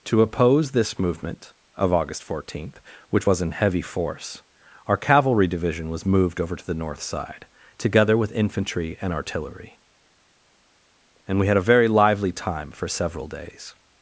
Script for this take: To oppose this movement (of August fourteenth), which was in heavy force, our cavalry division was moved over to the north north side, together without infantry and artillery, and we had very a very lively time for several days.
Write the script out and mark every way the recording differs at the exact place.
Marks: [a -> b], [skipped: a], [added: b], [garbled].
To oppose this movement (of August fourteenth), which was in heavy force, our cavalry division was moved over to the north [skipped: north] side, together [without -> with] infantry and artillery, and we had [skipped: very] a very lively time for several days.